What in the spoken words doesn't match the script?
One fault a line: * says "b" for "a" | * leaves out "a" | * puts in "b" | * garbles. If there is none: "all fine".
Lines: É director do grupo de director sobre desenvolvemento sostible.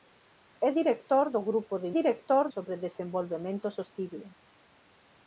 all fine